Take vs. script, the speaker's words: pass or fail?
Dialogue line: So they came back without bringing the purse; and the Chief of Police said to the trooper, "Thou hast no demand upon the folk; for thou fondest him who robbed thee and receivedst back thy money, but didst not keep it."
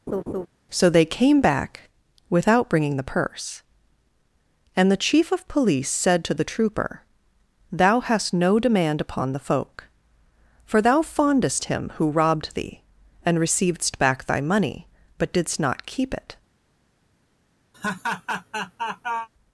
pass